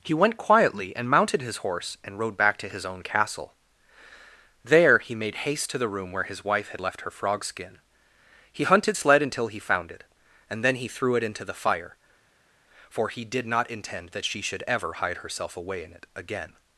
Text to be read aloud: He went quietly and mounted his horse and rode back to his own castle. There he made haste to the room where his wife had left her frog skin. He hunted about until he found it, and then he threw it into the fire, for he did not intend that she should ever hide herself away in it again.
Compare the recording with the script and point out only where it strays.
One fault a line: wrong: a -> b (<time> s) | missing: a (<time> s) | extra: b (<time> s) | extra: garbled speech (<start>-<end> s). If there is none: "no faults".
wrong: about -> sled (8.9 s)